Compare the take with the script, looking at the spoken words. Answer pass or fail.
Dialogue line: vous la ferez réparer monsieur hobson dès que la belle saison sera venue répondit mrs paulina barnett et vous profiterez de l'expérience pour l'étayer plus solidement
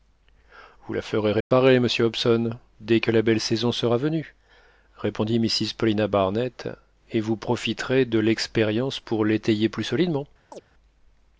pass